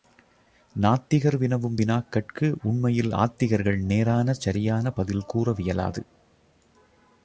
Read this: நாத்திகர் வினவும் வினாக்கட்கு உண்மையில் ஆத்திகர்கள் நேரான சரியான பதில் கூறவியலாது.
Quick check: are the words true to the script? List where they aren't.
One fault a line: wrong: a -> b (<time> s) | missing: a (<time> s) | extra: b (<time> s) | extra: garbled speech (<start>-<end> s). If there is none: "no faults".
no faults